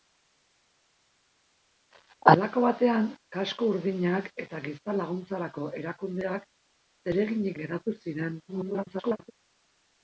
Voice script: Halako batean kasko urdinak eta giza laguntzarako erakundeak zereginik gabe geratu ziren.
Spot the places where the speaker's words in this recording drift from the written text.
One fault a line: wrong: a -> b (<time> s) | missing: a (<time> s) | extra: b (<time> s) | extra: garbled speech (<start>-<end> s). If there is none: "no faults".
missing: gabe (7.6 s)
extra: garbled speech (8.5-9.3 s)